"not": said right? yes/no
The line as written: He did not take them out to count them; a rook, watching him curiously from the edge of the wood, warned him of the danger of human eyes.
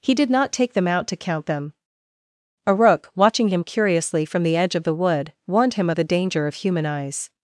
yes